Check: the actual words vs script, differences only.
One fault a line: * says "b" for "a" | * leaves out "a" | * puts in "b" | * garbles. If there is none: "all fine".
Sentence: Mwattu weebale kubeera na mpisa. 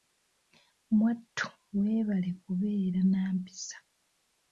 all fine